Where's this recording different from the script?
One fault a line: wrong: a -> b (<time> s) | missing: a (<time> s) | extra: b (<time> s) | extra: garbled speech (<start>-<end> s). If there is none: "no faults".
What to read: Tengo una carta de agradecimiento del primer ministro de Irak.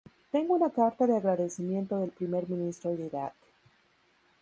no faults